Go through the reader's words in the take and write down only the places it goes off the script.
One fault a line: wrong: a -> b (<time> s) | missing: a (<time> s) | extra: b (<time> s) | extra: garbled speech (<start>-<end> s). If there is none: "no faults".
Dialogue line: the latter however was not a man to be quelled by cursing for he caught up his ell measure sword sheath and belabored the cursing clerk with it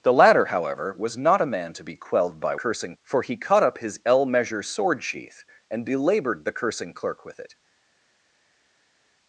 no faults